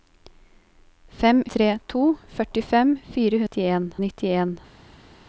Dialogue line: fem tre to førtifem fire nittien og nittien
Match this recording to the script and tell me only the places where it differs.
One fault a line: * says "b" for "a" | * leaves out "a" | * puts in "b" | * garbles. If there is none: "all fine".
all fine